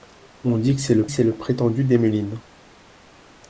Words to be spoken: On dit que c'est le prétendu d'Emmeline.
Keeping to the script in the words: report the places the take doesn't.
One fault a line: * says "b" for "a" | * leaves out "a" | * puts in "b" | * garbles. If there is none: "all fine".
* puts in "c'est le"